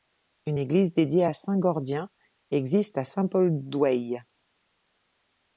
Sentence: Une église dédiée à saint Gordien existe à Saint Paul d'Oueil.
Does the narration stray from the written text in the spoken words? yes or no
no